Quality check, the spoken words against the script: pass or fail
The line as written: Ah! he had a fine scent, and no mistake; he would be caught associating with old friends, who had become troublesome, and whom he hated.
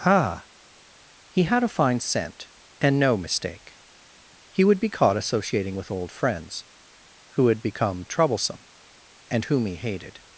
pass